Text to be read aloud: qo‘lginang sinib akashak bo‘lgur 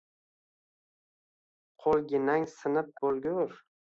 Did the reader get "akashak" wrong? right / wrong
wrong